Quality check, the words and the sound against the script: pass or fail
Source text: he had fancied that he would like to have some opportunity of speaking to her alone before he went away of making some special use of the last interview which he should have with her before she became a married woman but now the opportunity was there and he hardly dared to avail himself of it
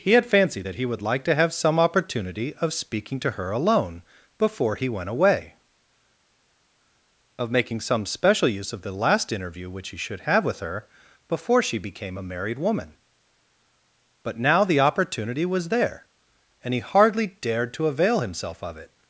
pass